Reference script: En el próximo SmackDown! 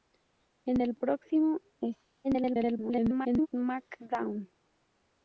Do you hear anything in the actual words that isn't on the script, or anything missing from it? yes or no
yes